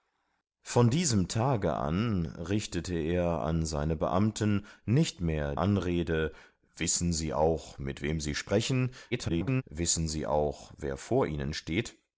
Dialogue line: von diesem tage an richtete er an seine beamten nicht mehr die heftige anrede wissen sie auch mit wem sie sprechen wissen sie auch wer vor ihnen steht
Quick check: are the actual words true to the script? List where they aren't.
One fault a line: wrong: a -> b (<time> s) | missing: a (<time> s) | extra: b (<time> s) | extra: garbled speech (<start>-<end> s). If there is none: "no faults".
missing: die heftige (5.5 s)
extra: garbled speech (9.1-9.6 s)